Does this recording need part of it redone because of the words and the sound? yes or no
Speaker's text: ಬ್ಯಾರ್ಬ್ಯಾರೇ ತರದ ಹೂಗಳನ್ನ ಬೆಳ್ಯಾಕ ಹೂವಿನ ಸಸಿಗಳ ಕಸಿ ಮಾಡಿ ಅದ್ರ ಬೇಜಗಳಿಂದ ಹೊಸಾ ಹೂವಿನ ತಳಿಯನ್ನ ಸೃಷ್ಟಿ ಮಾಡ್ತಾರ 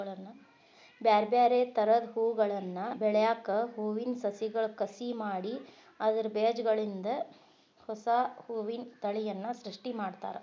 no